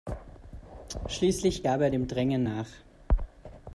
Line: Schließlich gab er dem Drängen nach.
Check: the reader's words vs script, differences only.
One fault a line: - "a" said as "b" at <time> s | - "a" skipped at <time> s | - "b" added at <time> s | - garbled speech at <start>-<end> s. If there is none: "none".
none